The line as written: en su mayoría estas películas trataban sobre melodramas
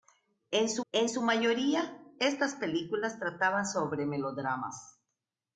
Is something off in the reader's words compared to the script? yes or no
yes